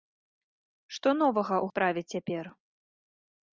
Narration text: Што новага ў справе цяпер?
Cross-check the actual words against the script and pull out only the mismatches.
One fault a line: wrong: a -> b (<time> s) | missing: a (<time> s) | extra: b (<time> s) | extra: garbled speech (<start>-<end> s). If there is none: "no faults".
no faults